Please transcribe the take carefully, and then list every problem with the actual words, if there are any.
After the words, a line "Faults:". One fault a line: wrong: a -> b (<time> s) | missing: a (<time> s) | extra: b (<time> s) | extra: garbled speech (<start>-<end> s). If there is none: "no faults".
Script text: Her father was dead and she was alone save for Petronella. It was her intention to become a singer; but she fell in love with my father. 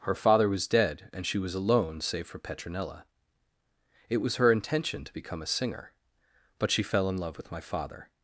Her father was dead and she was alone save for Petronella. It was her intention to become a singer; but she fell in love with my father.
Faults:
no faults